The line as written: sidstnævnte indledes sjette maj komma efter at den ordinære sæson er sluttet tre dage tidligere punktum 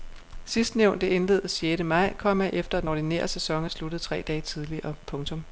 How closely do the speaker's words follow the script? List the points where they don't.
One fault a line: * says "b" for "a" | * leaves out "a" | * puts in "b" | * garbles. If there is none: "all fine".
all fine